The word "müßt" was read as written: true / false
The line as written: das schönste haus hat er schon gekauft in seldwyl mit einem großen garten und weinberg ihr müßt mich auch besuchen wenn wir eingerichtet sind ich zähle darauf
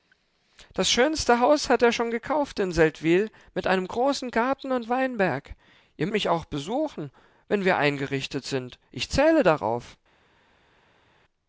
false